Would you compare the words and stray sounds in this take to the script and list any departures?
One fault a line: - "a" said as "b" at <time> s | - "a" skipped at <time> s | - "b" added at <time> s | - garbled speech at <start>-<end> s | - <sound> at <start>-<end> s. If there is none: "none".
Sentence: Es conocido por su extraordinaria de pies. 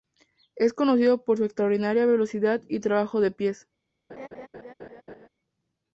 - "velocidad y trabajo" added at 2.1 s
- laugh at 4.1-5.3 s